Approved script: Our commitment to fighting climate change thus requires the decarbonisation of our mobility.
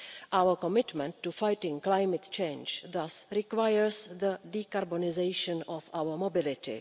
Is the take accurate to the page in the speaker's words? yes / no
yes